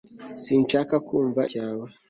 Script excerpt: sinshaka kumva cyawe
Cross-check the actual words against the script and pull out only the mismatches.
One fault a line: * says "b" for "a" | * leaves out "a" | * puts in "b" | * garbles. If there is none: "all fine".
all fine